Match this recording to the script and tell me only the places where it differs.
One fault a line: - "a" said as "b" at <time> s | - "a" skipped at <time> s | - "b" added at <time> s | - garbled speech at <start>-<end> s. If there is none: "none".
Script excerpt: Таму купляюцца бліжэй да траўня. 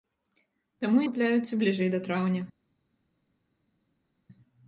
none